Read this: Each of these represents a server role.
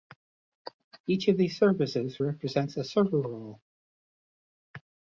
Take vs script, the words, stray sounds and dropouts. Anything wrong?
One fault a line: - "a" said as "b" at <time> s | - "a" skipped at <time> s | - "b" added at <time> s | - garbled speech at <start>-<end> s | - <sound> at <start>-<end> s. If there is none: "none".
- "services" added at 1.6 s